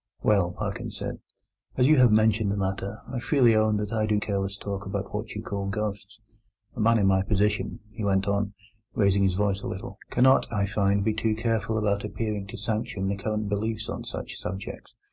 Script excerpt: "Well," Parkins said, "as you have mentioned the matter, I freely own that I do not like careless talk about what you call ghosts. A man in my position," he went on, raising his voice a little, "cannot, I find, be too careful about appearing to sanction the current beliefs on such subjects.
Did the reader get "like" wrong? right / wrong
wrong